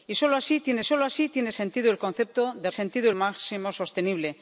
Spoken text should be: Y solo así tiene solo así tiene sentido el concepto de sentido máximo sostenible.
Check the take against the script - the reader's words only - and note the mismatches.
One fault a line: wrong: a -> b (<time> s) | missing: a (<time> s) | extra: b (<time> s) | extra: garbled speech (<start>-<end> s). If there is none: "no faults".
no faults